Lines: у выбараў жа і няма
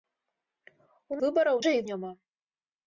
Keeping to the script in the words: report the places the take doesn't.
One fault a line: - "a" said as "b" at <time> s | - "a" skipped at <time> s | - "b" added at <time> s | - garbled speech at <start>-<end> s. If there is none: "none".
none